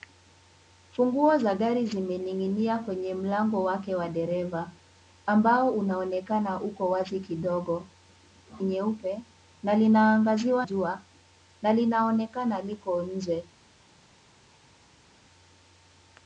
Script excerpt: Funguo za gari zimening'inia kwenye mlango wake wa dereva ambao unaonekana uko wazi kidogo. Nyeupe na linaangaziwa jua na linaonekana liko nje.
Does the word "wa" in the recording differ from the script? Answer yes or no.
no